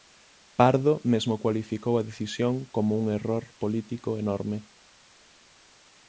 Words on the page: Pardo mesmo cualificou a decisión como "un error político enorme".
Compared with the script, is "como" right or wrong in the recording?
right